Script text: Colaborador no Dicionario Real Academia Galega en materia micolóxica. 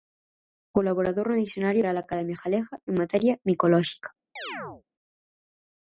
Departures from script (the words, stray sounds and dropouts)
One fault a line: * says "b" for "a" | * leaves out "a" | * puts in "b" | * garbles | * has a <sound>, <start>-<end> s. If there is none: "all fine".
* has a chirp, 4.4-4.8 s